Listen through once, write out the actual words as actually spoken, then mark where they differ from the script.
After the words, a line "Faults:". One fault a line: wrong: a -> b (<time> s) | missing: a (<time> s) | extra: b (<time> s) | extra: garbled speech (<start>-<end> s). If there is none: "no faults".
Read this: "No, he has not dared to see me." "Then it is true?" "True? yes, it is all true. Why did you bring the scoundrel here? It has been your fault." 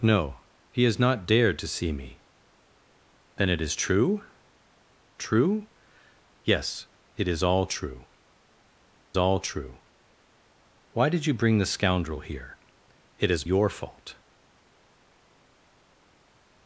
"No, he has not dared to see me." "Then it is true?" "True? yes, it is all true all true. Why did you bring the scoundrel here? It has your fault."
Faults:
extra: all true (9.2 s)
missing: been (13.4 s)